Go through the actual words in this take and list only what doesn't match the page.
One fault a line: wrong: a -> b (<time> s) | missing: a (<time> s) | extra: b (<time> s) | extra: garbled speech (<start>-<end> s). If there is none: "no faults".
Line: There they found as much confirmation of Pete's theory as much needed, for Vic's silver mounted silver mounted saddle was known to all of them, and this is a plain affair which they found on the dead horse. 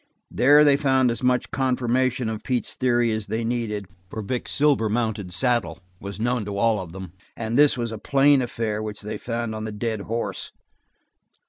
wrong: much -> they (3.3 s)
missing: silver mounted (5.3 s)
wrong: is -> was (7.8 s)